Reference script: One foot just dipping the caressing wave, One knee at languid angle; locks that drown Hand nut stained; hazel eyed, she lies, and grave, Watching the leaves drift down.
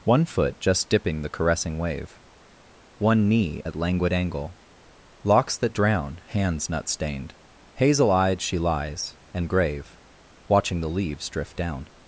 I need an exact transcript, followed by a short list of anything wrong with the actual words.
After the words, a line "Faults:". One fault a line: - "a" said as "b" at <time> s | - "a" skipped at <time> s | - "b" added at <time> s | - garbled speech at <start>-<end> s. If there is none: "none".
One foot just dipping the caressing wave, One knee at languid angle; locks that drown Hands nut stained; hazel eyed, she lies, and grave, Watching the leaves drift down.
Faults:
- "Hand" said as "Hands" at 6.3 s